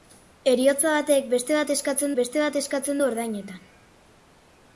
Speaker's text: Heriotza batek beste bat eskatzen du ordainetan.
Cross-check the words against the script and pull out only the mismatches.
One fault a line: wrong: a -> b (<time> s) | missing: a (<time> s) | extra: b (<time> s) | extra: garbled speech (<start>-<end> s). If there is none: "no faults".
extra: beste bat eskatzen (2.2 s)